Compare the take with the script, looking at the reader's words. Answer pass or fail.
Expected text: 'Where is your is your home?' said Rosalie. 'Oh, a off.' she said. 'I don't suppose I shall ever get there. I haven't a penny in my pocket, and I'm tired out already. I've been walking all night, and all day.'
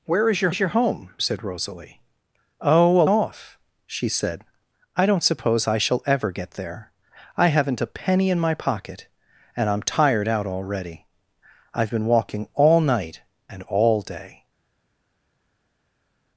pass